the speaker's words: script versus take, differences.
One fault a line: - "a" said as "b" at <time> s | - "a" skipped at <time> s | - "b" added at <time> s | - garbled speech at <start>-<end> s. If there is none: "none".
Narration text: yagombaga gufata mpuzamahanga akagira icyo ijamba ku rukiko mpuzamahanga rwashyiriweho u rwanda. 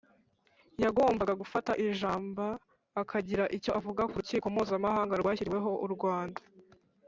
- "mpuzamahanga" said as "ijamba" at 1.9 s
- "ijamba" said as "avuga" at 3.8 s